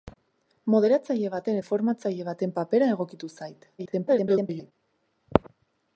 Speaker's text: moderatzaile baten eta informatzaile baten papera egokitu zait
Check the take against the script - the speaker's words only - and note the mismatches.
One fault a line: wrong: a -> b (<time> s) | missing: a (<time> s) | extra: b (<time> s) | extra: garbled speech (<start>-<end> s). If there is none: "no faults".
missing: eta (1.6 s)
extra: garbled speech (3.8-4.7 s)